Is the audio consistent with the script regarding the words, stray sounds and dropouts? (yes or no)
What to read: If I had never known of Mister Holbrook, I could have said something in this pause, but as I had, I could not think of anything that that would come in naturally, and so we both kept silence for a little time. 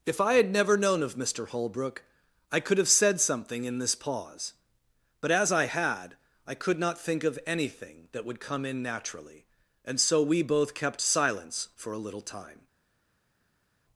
no